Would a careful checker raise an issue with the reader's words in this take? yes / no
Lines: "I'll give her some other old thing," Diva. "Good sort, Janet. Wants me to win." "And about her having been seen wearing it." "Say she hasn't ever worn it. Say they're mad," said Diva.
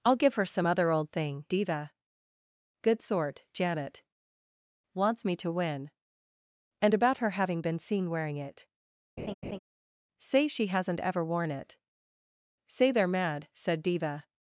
no